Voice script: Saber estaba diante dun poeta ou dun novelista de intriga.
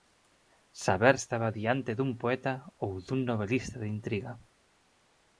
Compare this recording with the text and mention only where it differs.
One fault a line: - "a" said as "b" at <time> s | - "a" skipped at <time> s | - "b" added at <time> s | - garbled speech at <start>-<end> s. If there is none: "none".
none